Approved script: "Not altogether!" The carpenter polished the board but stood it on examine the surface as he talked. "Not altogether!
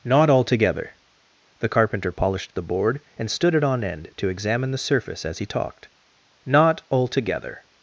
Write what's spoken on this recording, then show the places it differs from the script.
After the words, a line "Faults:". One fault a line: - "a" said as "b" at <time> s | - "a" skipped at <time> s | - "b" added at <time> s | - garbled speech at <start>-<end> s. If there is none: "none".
"Not altogether!" The carpenter polished the board and stood it on end to examine the surface as he talked. "Not altogether!
Faults:
- "but" said as "and" at 3.2 s
- "end to" added at 3.8 s